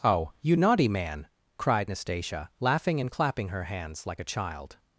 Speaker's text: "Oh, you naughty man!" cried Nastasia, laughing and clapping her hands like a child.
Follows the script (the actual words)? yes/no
yes